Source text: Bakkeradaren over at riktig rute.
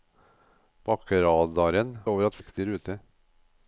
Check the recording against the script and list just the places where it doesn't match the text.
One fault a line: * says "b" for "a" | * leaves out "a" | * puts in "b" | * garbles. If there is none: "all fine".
all fine